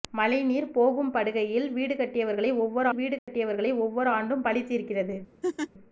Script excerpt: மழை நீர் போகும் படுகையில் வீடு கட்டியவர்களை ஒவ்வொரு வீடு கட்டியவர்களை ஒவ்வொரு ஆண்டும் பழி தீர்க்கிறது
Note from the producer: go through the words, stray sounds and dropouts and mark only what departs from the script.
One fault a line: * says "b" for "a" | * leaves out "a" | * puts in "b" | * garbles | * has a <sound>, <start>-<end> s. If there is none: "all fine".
* has a dropout, 3.2-3.3 s
* has a laugh, 5.4-5.7 s